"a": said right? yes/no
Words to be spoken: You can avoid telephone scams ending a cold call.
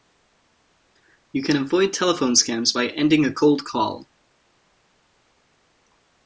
yes